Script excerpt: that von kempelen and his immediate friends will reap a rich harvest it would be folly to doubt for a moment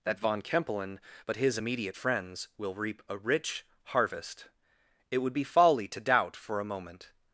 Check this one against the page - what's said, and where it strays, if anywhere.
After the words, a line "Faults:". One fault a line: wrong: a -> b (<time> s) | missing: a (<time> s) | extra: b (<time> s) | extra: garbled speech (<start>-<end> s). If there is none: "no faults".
that von kempelen but his immediate friends will reap a rich harvest it would be folly to doubt for a moment
Faults:
wrong: and -> but (1.3 s)